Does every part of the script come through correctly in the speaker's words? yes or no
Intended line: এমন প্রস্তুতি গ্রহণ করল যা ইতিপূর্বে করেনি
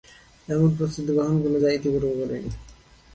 yes